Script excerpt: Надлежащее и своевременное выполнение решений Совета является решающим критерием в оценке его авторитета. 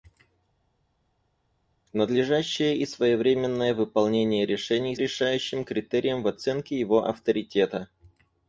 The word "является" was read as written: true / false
false